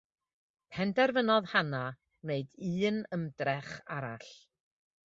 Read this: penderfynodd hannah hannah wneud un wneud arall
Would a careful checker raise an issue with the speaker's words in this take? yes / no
yes